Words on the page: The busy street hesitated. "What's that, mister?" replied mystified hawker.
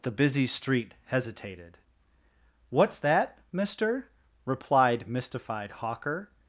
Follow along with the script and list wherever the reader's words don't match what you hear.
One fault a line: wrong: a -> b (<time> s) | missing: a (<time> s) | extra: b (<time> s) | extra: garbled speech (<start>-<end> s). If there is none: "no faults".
no faults